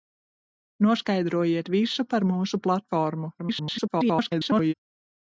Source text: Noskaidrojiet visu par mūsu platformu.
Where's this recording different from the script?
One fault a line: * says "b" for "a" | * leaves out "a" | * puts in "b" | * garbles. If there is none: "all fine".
* garbles